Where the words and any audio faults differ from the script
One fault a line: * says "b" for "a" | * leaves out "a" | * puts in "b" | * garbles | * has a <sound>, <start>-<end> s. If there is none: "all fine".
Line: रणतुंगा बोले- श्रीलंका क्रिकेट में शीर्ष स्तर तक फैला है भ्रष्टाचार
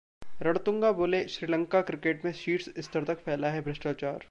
all fine